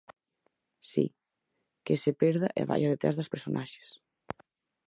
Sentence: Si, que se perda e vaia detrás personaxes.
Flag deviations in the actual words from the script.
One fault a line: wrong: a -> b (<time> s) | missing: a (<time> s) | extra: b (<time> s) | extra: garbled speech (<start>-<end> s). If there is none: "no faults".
extra: das (3.2 s)